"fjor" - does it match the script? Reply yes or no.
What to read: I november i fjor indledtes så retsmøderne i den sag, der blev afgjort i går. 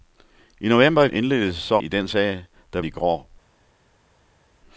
no